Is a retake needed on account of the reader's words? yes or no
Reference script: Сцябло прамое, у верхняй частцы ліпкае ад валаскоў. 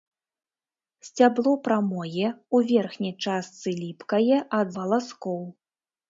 no